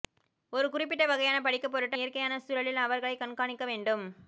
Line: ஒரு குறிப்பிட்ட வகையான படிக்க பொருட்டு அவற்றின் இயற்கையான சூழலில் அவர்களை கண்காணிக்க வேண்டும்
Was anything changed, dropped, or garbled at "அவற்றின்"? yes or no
yes